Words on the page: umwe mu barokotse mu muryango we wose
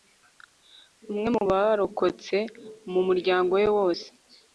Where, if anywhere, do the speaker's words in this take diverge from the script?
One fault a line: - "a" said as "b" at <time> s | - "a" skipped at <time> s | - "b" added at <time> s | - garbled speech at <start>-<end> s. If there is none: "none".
none